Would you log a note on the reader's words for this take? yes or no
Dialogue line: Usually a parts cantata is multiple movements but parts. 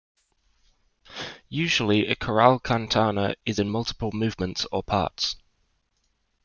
yes